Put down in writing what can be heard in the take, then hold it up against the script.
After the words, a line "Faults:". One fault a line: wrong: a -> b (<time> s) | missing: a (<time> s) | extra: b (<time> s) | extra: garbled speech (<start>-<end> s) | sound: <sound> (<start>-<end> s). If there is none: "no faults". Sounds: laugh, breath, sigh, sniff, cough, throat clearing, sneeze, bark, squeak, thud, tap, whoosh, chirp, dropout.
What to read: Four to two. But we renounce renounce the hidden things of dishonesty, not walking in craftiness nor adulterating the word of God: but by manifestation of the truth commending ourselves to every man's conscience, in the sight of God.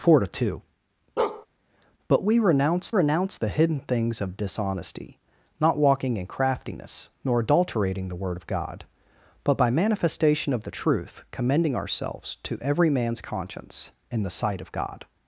Four to two. But we renounce renounce the hidden things of dishonesty, not walking in craftiness nor adulterating the word of God: but by manifestation of the truth commending ourselves to every man's conscience, in the sight of God.
Faults:
sound: bark (1.2-1.5 s)